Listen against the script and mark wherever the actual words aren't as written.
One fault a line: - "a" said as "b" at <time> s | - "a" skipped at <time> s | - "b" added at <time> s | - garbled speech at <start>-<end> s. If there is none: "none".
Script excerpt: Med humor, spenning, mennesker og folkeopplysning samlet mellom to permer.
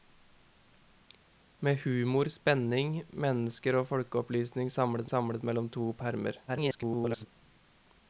- "samlet" added at 5.1 s
- garbled speech at 6.5-7.3 s